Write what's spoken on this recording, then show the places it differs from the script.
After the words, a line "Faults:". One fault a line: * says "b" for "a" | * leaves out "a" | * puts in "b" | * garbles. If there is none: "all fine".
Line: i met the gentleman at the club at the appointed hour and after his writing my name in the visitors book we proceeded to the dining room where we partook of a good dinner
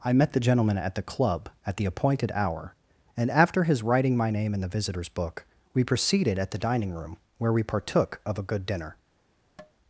i met the gentleman at the club at the appointed hour and after his writing my name in the visitors book we proceeded at the dining room where we partook of a good dinner
Faults:
* says "at" for "to"